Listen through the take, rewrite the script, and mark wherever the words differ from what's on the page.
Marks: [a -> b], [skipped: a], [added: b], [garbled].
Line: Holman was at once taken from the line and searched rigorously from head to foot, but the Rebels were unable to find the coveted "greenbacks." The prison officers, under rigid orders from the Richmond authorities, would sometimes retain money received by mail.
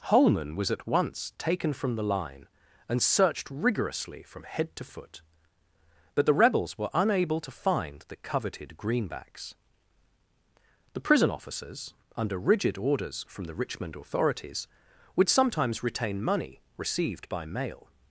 Holman was at once taken from the line and searched rigorously from head to foot, but the Rebels were unable to find the coveted "greenbacks." The prison officers, under rigid orders from the Richmond authorities, would sometimes retain money received by mail.